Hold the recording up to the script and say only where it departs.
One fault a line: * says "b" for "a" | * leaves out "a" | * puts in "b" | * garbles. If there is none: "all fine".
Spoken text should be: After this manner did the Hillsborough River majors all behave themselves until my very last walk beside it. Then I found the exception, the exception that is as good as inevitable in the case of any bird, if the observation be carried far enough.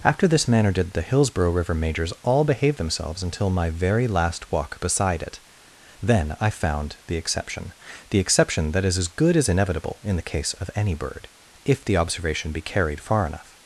all fine